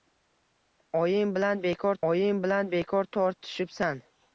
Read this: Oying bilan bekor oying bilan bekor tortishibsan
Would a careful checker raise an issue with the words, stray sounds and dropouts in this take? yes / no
no